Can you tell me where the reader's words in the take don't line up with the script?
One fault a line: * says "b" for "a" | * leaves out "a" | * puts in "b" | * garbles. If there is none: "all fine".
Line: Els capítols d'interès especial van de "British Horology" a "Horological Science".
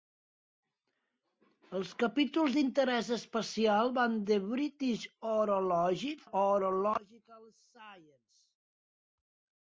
all fine